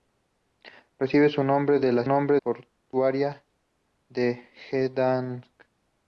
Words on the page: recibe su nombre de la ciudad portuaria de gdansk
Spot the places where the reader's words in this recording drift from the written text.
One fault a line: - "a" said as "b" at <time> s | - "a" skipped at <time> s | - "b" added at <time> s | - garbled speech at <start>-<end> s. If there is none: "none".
- "ciudad" said as "nombre" at 2.0 s